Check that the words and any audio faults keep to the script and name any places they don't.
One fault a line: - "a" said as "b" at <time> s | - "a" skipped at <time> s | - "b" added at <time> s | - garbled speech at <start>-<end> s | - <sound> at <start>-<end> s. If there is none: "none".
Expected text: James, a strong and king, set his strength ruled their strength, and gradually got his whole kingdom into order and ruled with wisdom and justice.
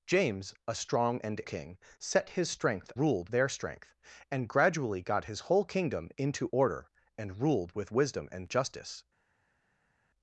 none